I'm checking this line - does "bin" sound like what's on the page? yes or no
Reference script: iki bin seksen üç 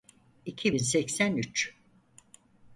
yes